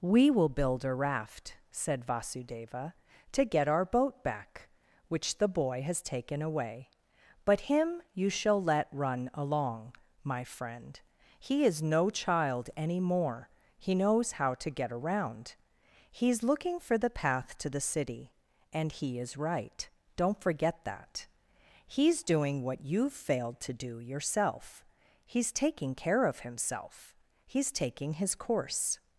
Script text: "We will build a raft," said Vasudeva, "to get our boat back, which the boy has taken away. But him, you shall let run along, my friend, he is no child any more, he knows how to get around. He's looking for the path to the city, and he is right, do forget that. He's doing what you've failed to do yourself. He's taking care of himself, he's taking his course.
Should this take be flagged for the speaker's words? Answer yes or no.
yes